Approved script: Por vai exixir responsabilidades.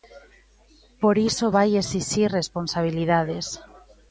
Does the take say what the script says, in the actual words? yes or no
no